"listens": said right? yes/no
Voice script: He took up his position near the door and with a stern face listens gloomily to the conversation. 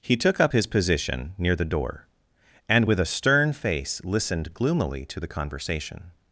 no